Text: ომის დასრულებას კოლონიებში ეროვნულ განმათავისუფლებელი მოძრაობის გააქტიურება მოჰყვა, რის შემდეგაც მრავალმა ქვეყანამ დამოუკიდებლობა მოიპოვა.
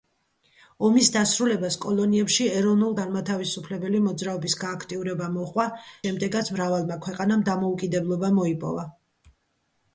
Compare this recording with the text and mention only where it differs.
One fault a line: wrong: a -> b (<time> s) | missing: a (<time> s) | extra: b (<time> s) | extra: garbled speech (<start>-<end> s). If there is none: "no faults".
missing: რის (5.7 s)